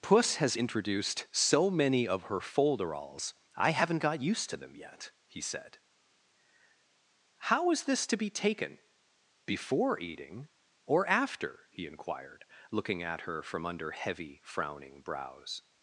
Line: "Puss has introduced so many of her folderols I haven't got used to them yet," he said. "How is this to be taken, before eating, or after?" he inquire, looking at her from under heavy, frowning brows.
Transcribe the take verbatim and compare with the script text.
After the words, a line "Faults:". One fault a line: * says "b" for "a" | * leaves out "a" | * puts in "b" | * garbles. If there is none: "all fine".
"Puss has introduced so many of her folderols I haven't got used to them yet," he said. "How is this to be taken, before eating, or after?" he inquired, looking at her from under heavy, frowning brows.
Faults:
* says "inquired" for "inquire"